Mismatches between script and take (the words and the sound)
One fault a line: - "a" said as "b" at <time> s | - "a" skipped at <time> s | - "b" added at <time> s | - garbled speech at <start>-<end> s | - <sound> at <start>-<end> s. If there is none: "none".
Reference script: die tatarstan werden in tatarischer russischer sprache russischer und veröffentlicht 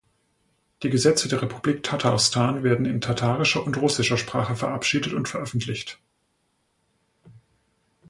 - "gesetze der republik" added at 0.9 s
- "und" added at 3.6 s
- "russischer" said as "verabschiedet" at 4.5 s